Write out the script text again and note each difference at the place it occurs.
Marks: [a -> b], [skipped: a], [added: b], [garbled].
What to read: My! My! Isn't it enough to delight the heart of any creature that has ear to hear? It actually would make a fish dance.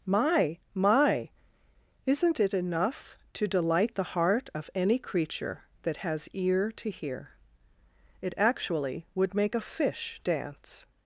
My! My! Isn't it enough to delight the heart of any creature that has ear to hear? It actually would make a fish dance.